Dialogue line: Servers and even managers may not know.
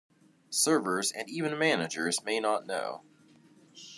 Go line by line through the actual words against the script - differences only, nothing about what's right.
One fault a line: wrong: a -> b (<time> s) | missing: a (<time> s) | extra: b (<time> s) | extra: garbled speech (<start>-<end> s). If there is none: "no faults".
no faults